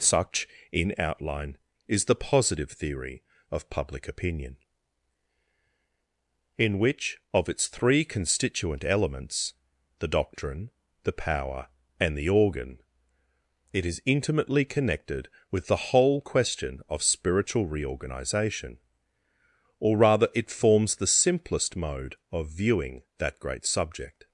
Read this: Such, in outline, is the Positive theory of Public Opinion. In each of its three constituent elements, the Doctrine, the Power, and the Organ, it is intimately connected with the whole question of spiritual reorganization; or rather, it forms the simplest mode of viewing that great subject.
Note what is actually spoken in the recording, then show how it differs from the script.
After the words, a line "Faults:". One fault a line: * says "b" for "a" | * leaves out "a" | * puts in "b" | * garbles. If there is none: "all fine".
Such, in outline, is the Positive theory of Public Opinion. In which of its three constituent elements, the Doctrine, the Power, and the Organ, it is intimately connected with the whole question of spiritual reorganization; or rather, it forms the simplest mode of viewing that great subject.
Faults:
* says "which" for "each"